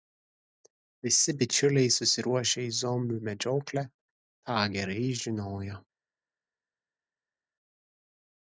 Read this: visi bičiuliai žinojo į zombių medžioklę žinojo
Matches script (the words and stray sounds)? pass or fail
fail